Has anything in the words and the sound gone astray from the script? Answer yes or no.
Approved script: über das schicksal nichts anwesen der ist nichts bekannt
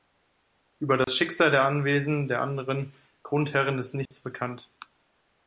yes